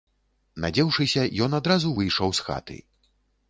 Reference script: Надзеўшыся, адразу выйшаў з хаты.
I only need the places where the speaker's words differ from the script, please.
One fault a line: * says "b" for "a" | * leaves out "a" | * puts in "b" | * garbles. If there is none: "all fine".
* puts in "ён"